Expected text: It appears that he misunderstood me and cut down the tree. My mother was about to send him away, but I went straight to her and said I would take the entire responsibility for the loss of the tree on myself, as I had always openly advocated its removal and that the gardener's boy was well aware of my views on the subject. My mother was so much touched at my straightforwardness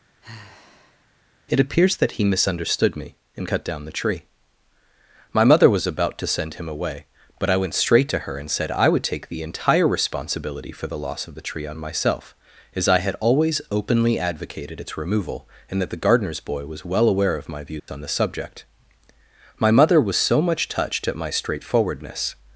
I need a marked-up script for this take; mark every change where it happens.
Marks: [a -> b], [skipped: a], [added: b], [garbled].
It appears that he misunderstood me and cut down the tree. My mother was about to send him away, but I went straight to her and said I would take the entire responsibility for the loss of the tree on myself, as I had always openly advocated its removal and that the gardener's boy was well aware of my views on the subject. My mother was so much touched at my straightforwardness